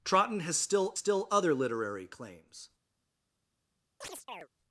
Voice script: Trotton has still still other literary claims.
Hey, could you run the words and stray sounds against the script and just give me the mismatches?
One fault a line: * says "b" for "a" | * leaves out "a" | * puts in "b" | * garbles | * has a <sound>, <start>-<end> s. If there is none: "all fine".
* has a chirp, 4.0-4.5 s